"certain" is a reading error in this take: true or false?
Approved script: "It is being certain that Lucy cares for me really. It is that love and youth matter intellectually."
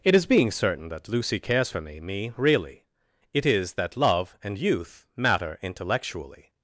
false